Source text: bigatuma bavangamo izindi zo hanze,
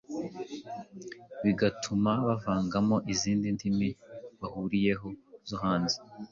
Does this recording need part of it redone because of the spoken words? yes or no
yes